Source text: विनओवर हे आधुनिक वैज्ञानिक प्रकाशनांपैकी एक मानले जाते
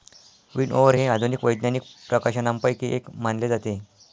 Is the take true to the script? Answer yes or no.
yes